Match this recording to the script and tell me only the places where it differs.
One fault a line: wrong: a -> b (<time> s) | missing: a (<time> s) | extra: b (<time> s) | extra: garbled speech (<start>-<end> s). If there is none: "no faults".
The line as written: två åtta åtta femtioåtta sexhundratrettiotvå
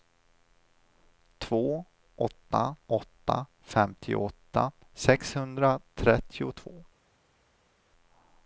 no faults